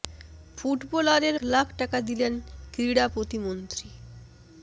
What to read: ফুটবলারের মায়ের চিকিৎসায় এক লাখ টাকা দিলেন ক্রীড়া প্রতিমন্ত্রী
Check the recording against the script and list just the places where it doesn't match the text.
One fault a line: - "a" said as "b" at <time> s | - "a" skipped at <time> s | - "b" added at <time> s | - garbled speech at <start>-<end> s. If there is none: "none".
- "মায়ের চিকিৎসায় এক" skipped at 1.4 s